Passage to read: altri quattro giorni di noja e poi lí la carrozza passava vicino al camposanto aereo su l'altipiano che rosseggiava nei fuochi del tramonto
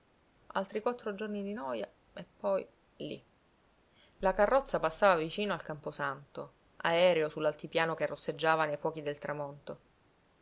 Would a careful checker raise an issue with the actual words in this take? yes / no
no